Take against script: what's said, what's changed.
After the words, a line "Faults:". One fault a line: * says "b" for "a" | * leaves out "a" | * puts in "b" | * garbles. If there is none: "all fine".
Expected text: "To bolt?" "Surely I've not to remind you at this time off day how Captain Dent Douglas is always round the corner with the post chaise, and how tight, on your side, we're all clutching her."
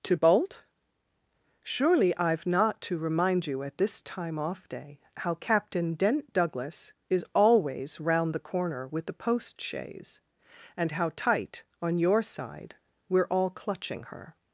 "To bolt?" "Surely I've not to remind you at this time off day how Captain Dent Douglas is always round the corner with the post chaise, and how tight, on your side, we're all clutching her."
Faults:
all fine